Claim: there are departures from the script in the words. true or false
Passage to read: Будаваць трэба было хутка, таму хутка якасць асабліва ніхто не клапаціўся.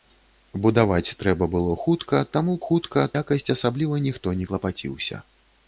false